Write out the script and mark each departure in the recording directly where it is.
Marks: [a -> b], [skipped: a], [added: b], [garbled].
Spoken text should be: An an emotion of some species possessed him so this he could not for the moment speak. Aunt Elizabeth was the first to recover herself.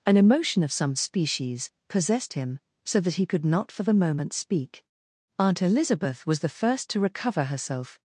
An [skipped: an] emotion of some species possessed him so [this -> that] he could not for the moment speak. Aunt Elizabeth was the first to recover herself.